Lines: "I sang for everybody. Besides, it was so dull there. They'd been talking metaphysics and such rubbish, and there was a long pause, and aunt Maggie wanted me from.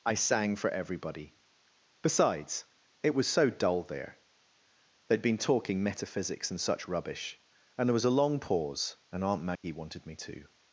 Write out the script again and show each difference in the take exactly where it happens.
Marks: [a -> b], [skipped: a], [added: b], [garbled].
"I sang for everybody. Besides, it was so dull there. They'd been talking metaphysics and such rubbish, and there was a long pause, and aunt Maggie wanted me [from. -> to]